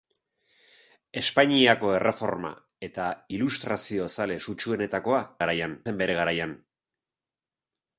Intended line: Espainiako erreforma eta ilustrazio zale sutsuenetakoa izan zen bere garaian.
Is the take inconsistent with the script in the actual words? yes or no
yes